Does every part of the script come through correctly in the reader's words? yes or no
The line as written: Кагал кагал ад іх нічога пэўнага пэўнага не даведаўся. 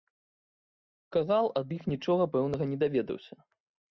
no